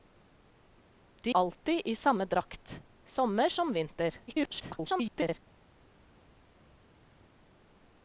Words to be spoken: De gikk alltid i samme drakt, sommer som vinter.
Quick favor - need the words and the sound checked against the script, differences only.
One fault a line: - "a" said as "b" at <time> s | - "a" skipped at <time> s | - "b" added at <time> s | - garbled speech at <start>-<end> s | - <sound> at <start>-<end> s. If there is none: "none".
- "gikk" skipped at 1.3 s
- garbled speech at 4.3-5.4 s